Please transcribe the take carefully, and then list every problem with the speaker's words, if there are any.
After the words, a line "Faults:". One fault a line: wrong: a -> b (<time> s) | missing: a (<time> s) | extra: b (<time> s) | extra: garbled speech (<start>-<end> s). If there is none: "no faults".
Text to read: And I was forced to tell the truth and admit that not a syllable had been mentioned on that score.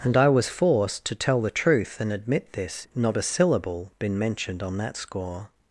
And I was forced to tell the truth and admit this not a syllable been mentioned on that score.
Faults:
wrong: that -> this (2.5 s)
missing: had (3.9 s)